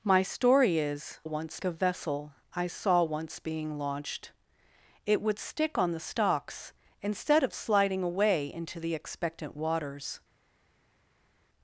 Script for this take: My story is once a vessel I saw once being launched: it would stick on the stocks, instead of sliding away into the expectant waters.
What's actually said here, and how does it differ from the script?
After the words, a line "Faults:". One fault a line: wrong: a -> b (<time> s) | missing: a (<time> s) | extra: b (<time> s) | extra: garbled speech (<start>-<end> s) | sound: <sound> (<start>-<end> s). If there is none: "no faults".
My story is once a vessel I saw once being launched: it would stick on the stocks, instead of sliding away into the expectant waters.
Faults:
no faults